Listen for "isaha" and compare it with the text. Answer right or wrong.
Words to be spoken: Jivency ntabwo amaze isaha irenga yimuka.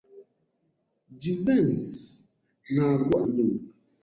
wrong